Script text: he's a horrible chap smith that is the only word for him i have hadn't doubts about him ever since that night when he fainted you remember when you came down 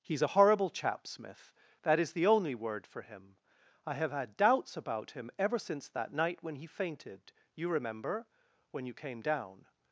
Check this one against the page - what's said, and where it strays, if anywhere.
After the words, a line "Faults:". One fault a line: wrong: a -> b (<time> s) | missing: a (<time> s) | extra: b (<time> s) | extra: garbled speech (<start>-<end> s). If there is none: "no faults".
he's a horrible chap smith that is the only word for him i have had doubts about him ever since that night when he fainted you remember when you came down
Faults:
wrong: hadn't -> had (4.1 s)